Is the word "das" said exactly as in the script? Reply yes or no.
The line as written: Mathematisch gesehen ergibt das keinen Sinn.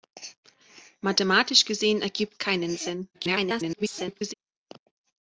no